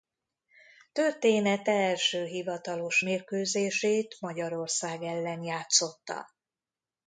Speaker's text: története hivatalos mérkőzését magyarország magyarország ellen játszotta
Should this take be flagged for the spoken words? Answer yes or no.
yes